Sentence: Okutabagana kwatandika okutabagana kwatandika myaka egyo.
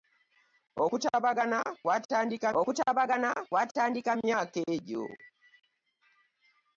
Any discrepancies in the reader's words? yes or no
no